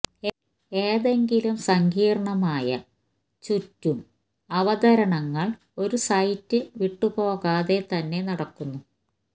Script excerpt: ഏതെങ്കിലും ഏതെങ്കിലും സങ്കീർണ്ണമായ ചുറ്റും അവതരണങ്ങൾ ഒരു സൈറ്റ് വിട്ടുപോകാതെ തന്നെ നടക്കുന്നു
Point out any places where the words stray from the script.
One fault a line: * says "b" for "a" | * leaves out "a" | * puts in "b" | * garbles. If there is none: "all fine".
* leaves out "ഏതെങ്കിലും"